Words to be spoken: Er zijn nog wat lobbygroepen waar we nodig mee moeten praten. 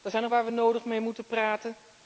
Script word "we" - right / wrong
right